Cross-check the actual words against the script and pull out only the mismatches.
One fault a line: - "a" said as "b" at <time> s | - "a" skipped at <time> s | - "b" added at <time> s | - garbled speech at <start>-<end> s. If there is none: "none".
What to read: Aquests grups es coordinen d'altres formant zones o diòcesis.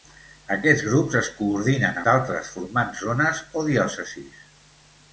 none